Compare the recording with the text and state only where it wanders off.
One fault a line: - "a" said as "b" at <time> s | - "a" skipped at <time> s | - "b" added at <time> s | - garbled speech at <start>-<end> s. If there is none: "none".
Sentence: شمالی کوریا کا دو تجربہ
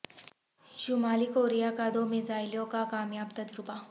- "میزائلوں کا کامیاب" added at 2.1 s